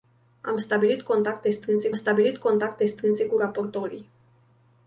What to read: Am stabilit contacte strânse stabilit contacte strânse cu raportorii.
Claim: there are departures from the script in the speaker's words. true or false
false